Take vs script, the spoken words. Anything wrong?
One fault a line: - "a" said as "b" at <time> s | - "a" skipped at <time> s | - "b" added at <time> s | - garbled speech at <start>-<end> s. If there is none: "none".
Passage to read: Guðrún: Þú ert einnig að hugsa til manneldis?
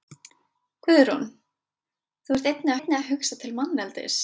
- "einnig" added at 2.8 s